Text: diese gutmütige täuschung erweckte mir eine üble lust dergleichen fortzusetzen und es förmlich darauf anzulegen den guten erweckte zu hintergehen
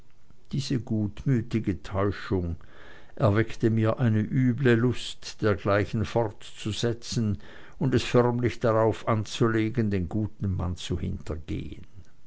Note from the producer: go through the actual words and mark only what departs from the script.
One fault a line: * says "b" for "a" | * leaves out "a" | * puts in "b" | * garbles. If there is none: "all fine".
* says "mann" for "erweckte"